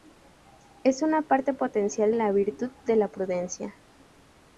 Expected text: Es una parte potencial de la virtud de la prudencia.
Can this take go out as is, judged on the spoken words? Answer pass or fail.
fail